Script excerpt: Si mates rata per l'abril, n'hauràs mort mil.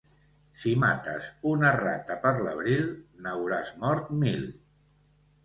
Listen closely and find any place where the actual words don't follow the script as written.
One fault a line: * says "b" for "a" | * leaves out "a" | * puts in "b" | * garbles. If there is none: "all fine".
* puts in "una"